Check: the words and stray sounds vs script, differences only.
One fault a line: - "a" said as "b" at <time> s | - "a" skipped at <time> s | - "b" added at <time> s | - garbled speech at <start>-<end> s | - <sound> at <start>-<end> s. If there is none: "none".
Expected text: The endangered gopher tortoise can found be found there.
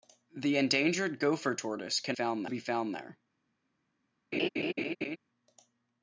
- laugh at 4.3-5.2 s